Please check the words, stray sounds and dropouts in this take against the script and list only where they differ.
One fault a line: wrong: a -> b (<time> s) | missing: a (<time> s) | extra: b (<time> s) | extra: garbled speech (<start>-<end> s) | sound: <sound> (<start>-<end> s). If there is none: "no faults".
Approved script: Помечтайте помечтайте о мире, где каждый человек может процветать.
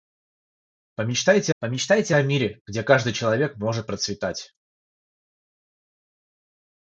no faults